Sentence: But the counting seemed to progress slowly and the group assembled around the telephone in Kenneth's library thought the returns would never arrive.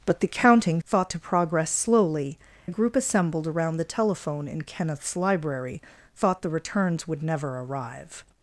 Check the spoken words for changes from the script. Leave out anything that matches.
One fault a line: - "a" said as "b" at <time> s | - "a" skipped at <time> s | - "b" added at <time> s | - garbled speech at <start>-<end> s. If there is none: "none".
- "seemed" said as "thought" at 0.8 s
- "and" skipped at 2.4 s